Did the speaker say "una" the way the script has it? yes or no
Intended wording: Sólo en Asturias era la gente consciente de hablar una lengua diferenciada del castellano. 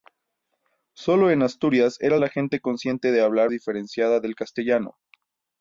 no